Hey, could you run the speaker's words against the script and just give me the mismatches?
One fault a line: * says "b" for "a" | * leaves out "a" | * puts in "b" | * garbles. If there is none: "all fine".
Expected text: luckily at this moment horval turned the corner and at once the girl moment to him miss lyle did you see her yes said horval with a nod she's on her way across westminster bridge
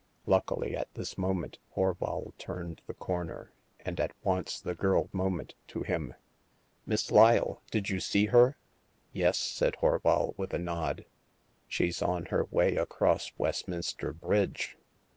all fine